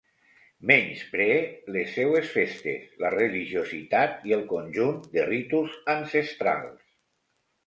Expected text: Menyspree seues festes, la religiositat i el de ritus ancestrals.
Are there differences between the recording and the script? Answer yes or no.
yes